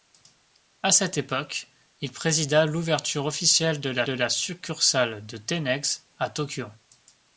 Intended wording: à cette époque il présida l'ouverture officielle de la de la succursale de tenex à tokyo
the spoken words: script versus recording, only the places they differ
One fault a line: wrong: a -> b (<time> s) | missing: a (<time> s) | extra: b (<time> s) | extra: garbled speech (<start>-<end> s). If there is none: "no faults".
no faults